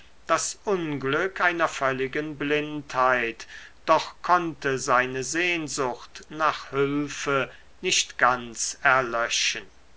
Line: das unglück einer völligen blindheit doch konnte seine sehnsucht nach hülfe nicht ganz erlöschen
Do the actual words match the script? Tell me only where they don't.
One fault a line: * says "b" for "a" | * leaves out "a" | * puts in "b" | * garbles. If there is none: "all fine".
all fine